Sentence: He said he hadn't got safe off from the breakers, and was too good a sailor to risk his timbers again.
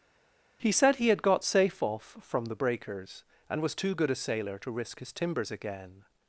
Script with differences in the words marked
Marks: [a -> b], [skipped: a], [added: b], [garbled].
He said he [hadn't -> had] got safe off from the breakers, and was too good a sailor to risk his timbers again.